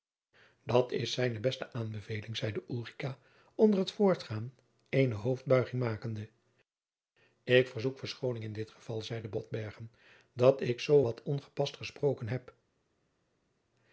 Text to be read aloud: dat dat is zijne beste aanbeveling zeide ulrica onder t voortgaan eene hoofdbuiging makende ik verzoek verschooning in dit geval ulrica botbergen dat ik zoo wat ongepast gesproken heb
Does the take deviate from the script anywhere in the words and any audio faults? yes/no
yes